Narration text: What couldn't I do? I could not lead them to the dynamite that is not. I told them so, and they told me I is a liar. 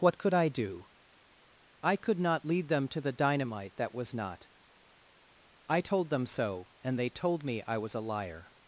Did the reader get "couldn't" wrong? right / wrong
wrong